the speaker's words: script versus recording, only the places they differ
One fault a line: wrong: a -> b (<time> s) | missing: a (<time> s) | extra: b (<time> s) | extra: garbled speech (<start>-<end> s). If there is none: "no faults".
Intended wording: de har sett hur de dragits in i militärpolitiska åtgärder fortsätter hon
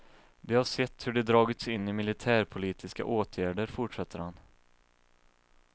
wrong: hon -> han (4.2 s)